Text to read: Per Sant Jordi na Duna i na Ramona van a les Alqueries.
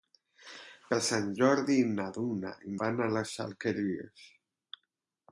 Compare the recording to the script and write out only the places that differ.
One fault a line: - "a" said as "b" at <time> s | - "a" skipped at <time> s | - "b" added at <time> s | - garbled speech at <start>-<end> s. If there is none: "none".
- "na Ramona" skipped at 2.7 s